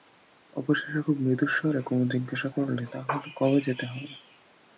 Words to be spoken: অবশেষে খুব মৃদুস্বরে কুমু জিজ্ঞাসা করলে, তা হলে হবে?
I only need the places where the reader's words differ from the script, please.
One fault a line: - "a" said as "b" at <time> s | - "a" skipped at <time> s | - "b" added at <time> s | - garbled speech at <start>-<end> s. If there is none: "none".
- "কবে যেতে" added at 3.4 s